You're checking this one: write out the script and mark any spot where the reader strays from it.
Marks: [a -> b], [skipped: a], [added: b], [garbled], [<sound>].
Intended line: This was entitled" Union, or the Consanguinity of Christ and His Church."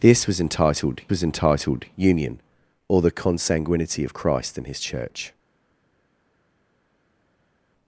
This was entitled" [added: was entitled] Union, or the Consanguinity of Christ and His Church."